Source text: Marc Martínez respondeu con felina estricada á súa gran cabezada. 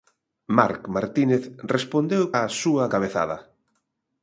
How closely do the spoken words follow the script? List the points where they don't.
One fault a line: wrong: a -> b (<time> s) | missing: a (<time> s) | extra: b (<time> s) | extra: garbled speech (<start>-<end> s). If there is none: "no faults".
missing: con felina estricada (2.2 s)
missing: gran (2.8 s)